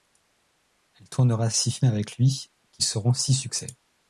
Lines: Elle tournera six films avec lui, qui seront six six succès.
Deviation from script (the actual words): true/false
true